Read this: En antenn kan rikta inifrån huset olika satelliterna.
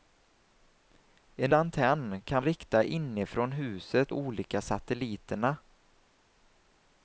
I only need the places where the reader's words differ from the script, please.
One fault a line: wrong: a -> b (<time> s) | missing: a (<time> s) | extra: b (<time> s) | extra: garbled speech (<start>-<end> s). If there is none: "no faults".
no faults